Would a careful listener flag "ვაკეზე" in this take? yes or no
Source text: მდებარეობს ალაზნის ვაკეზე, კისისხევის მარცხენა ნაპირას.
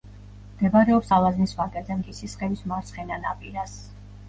no